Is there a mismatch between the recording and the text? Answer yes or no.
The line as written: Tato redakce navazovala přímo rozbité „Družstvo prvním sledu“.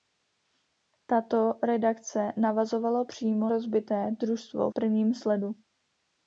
no